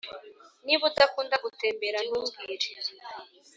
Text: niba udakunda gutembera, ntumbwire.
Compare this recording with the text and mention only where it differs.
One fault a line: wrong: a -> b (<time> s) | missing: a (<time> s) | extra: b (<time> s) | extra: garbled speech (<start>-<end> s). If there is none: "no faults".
no faults